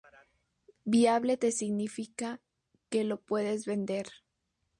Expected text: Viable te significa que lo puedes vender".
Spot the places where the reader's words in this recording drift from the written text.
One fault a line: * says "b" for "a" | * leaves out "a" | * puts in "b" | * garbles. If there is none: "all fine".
all fine